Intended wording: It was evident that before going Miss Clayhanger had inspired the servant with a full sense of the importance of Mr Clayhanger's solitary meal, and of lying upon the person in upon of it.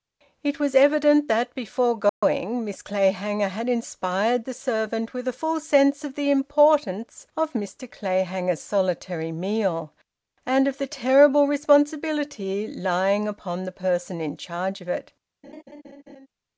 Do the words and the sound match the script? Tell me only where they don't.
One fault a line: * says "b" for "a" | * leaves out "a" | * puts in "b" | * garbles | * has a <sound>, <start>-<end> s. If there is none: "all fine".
* has a dropout, 2.1-2.2 s
* puts in "the terrible responsibility"
* says "charge" for "upon"
* has a laugh, 15.4-16.3 s